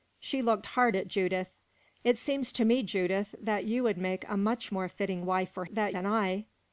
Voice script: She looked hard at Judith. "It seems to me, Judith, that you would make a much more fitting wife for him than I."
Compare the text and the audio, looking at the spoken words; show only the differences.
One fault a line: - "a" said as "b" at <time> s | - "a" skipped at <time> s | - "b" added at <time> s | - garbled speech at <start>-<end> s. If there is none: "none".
- "him" said as "that" at 5.7 s